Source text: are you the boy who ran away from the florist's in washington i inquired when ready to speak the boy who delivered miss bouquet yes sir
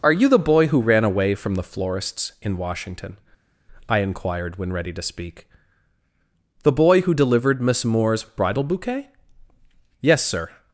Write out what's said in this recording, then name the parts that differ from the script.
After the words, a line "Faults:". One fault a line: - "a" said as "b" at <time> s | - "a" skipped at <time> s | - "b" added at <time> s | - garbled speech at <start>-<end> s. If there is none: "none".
are you the boy who ran away from the florist's in washington i inquired when ready to speak the boy who delivered miss moore's bridal bouquet yes sir
Faults:
- "moore's bridal" added at 7.8 s